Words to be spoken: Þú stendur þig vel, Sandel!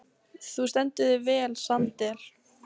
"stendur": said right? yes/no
yes